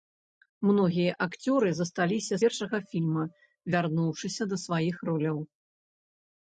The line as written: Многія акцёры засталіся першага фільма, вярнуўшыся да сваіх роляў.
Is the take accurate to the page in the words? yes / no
yes